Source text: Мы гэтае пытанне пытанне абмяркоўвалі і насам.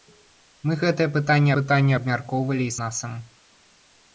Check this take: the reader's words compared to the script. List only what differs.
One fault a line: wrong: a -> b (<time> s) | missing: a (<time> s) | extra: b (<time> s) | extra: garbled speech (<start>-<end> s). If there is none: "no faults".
no faults